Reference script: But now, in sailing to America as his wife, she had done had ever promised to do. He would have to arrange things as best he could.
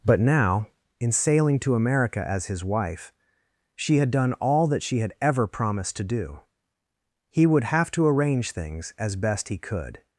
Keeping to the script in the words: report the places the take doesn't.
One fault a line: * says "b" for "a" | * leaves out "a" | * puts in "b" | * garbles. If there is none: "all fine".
* puts in "all that she"